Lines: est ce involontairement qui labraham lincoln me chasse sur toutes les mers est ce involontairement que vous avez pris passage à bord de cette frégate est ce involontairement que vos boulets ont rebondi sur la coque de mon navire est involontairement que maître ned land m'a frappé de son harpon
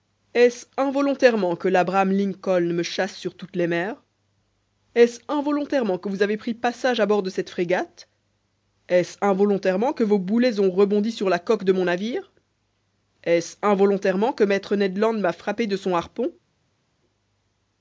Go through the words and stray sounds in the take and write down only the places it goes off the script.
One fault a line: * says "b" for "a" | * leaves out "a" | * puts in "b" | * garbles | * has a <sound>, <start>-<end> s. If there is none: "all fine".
* says "que" for "qui"
* puts in "ce"